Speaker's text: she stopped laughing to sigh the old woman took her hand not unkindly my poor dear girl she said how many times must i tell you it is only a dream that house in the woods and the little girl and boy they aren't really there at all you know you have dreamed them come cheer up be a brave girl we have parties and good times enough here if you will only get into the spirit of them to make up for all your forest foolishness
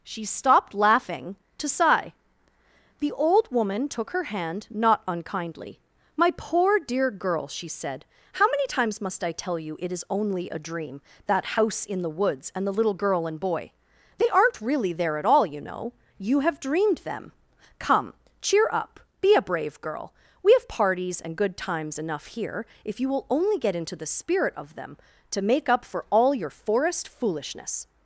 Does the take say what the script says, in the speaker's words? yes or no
yes